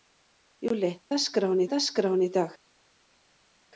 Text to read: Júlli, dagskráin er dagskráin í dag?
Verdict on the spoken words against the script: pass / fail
pass